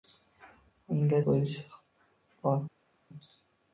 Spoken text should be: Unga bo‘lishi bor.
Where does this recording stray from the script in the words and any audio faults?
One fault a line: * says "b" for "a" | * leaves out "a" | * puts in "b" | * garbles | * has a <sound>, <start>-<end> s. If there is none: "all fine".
all fine